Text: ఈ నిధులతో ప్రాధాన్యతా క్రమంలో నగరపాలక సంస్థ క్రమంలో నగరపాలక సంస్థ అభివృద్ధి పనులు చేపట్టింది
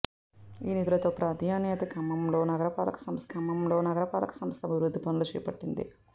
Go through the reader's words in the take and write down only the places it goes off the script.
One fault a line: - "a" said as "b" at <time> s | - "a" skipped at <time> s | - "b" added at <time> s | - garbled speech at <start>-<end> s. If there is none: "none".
none